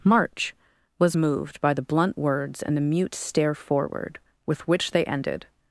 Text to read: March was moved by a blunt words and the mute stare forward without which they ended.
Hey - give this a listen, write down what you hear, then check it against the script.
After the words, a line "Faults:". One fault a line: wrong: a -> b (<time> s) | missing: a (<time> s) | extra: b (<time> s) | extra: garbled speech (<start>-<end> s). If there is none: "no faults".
March was moved by the blunt words and the mute stare forward with which they ended.
Faults:
wrong: a -> the (1.7 s)
wrong: without -> with (4.4 s)